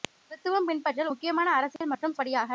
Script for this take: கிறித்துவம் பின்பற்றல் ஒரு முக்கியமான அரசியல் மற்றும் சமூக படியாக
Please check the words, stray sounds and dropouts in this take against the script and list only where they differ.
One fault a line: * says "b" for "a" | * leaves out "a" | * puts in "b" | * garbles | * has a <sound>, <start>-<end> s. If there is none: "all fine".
* leaves out "ஒரு"
* has a dropout, 1.8-1.8 s
* leaves out "சமூக"